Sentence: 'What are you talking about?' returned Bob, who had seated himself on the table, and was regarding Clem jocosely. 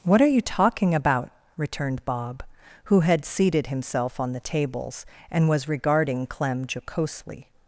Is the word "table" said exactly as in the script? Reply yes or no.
no